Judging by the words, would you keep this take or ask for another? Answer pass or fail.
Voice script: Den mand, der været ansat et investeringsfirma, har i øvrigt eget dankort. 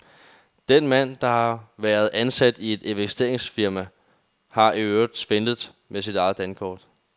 fail